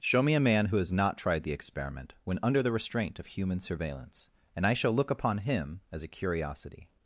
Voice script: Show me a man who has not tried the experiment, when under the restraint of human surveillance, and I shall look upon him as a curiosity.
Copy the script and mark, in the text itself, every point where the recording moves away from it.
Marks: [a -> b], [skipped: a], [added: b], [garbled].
Show me a man who has not tried the experiment, when under the restraint of human surveillance, and I shall look upon him as a curiosity.